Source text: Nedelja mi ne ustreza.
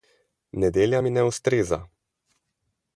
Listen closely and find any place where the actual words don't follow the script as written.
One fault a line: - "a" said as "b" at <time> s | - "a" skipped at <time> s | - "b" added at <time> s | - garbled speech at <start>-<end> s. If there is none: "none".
none